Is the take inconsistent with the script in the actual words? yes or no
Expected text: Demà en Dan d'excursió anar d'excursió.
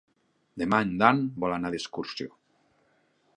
yes